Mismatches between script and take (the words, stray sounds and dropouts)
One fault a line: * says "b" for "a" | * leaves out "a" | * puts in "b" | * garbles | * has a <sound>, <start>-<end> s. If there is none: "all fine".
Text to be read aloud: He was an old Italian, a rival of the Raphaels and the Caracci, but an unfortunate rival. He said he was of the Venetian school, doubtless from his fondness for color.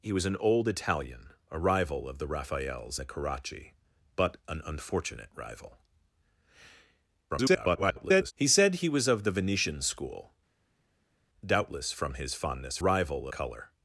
* leaves out "and"
* garbles
* says "rival" for "for"